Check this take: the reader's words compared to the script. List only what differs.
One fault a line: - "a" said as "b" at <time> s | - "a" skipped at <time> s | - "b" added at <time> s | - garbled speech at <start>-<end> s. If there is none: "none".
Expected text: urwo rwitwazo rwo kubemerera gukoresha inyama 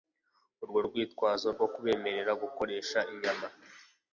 none